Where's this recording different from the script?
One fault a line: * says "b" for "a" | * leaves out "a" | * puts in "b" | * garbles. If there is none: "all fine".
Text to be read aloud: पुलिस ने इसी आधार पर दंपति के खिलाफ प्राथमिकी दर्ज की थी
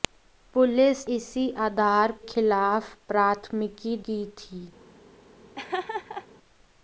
* leaves out "ने"
* leaves out "पर दंपति के"
* leaves out "दर्ज"